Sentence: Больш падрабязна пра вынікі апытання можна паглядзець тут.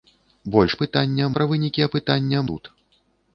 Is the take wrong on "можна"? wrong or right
wrong